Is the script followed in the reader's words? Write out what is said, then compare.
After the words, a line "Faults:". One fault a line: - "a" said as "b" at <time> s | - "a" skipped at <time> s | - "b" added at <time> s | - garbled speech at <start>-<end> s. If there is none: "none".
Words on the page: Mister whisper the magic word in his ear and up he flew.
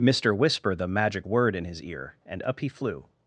Mister whisper the magic word in his ear and up he flew.
Faults:
none